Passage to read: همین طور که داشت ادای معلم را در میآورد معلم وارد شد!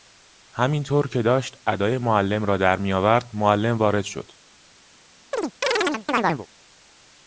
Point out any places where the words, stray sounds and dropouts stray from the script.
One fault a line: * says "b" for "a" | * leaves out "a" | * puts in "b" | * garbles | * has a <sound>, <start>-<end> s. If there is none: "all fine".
* has a chirp, 5.3-6.5 s